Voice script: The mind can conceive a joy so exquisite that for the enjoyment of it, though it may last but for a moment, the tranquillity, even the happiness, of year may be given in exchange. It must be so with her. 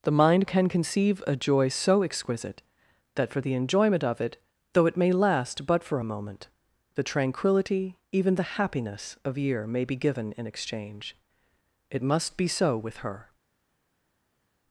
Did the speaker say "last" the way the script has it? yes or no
yes